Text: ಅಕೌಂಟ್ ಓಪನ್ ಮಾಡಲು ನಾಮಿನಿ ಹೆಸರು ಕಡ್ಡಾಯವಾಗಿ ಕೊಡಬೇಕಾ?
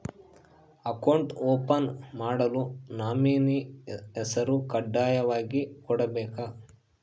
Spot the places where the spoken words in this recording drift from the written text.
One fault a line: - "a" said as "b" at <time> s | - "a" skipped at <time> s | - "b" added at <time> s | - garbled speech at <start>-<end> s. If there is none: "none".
none